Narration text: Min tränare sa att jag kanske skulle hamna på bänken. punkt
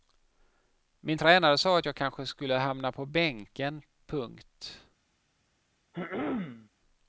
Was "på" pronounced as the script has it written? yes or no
yes